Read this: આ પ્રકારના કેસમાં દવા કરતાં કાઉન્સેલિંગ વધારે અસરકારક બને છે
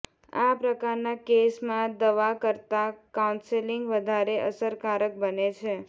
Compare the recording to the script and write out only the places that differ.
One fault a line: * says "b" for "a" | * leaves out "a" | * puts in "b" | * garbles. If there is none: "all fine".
all fine